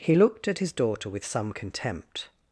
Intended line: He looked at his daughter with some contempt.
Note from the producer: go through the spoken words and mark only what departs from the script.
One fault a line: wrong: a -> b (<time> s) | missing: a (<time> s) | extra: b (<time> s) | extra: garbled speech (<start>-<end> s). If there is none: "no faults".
no faults